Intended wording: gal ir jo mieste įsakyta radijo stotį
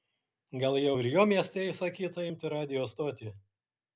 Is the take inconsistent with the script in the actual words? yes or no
yes